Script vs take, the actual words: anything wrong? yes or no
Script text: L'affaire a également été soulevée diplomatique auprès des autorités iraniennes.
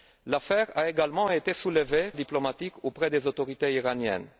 no